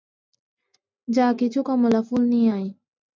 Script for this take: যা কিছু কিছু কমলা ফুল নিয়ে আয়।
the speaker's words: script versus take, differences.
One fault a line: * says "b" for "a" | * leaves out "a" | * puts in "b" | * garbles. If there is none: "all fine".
* leaves out "কিছু"